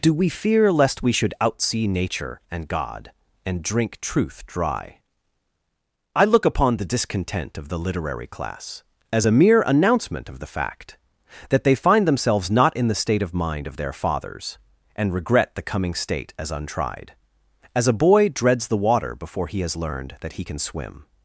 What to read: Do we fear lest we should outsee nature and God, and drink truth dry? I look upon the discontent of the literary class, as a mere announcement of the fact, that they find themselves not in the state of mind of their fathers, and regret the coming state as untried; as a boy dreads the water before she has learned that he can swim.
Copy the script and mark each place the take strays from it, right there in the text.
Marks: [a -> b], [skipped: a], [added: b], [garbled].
Do we fear lest we should outsee nature and God, and drink truth dry? I look upon the discontent of the literary class, as a mere announcement of the fact, that they find themselves not in the state of mind of their fathers, and regret the coming state as untried; as a boy dreads the water before [she -> he] has learned that he can swim.